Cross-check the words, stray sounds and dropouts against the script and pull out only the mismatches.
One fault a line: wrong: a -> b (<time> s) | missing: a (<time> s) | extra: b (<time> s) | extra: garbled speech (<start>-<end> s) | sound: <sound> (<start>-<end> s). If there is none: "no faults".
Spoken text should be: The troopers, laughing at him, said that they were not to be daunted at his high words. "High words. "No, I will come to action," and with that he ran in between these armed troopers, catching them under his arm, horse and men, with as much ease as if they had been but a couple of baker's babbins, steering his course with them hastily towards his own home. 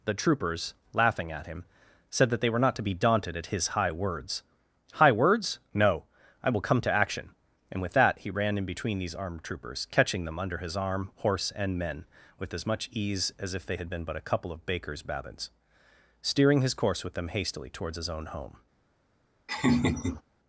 sound: laugh (19.5-20.2 s)